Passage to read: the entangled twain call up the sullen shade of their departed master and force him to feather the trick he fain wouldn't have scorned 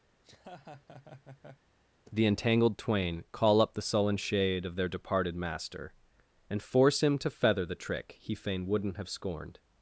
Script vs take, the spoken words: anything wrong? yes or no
no